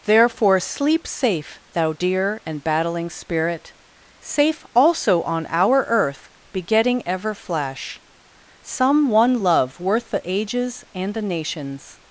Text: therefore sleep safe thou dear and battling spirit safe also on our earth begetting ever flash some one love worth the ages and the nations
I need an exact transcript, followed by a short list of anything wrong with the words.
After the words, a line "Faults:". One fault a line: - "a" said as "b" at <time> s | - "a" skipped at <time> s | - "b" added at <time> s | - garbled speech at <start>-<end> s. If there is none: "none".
therefore sleep safe thou dear and battling spirit safe also on our earth begetting ever flash some one love worth the ages and the nations
Faults:
none